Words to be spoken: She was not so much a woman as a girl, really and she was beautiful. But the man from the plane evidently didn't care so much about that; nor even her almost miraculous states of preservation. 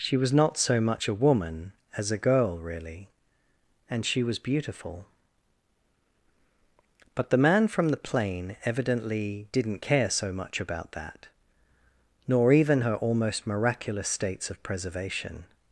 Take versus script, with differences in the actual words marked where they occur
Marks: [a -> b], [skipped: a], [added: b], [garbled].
She was not so much a woman as a girl, really and she was beautiful. But the man from the plane evidently didn't care so much about that; nor even her almost miraculous states of preservation.